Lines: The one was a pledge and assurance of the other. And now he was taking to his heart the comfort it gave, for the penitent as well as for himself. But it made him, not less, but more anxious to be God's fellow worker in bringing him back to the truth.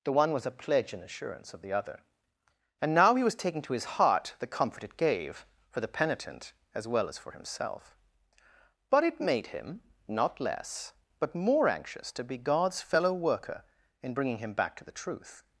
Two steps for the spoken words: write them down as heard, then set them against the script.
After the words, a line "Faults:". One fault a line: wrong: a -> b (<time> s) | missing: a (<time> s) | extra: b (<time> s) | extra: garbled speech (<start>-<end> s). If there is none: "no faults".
The one was a pledge and assurance of the other. And now he was taking to his heart the comfort it gave, for the penitent as well as for himself. But it made him, not less, but more anxious to be God's fellow worker in bringing him back to the truth.
Faults:
no faults